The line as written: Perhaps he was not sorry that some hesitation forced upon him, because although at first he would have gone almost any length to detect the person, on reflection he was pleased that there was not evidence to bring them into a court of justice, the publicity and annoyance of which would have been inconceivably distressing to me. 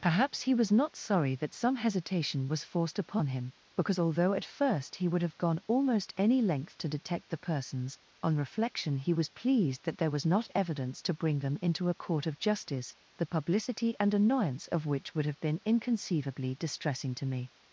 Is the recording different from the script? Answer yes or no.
yes